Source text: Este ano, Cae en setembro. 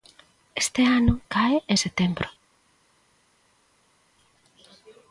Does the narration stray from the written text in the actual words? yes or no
no